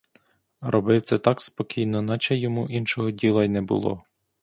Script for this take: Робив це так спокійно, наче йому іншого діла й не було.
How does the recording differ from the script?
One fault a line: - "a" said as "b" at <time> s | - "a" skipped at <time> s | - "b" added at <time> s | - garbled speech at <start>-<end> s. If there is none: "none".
none